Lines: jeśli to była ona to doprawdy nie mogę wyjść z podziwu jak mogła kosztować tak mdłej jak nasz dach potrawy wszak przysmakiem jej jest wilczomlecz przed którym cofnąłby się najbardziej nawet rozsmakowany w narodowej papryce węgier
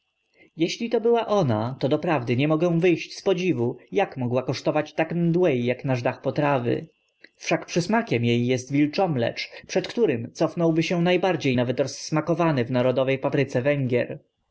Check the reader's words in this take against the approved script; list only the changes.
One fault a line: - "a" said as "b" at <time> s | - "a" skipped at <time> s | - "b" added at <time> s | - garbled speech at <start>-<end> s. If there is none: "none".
none